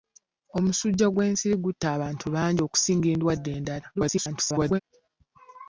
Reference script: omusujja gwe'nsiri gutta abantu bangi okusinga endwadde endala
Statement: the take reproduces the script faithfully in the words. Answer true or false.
false